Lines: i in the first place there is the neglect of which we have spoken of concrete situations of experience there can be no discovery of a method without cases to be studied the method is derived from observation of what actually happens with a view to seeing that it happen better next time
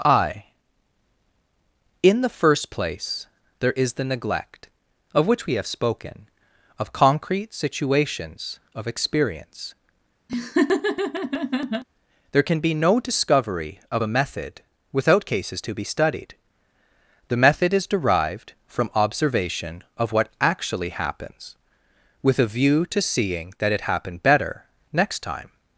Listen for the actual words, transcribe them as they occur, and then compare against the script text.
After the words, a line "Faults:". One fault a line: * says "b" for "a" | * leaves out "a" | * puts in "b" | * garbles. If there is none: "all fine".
i in the first place there is the neglect of which we have spoken of concrete situations of experience there can be no discovery of a method without cases to be studied the method is derived from observation of what actually happens with a view to seeing that it happen better next time
Faults:
all fine